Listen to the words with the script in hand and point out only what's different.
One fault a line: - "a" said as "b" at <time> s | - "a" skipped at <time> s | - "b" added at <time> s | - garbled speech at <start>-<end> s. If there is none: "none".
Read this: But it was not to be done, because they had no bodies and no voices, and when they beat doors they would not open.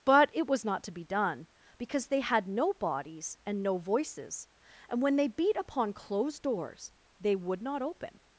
- "upon closed" added at 5.6 s